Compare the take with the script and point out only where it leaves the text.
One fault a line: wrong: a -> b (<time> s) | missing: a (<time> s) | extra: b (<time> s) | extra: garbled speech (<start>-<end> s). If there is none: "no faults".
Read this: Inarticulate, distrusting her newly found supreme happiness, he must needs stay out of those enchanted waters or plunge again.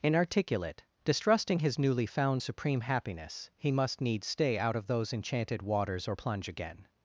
wrong: her -> his (1.6 s)